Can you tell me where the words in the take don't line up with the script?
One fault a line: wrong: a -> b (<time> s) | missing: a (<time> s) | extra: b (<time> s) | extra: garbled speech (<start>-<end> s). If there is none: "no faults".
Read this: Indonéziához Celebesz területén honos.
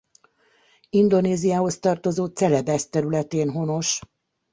extra: tartozó (1.8 s)